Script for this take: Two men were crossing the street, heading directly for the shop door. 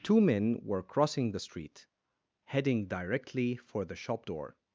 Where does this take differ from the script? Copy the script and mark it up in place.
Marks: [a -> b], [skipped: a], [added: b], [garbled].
Two men were crossing the street, heading directly for the shop door.